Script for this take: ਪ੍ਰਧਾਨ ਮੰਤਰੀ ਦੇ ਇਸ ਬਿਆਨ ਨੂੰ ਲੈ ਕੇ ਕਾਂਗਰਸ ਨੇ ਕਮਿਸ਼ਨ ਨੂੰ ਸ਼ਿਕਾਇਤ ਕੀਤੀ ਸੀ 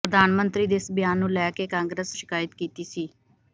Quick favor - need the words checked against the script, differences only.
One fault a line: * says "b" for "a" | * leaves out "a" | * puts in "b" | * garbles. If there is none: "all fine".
* leaves out "ਨੇ ਕਮਿਸ਼ਨ ਨੂੰ"